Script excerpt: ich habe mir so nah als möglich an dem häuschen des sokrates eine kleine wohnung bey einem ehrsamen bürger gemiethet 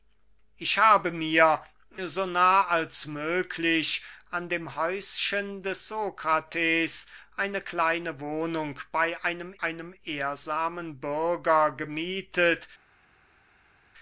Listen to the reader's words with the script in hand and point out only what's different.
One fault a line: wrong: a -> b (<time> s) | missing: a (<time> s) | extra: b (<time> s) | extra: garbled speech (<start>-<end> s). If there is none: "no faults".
extra: einem (9.6 s)